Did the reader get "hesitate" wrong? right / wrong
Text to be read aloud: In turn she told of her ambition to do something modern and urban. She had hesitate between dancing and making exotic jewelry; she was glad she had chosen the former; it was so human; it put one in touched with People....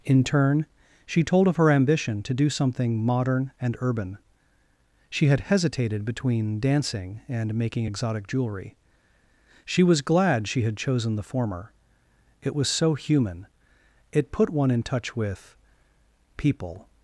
wrong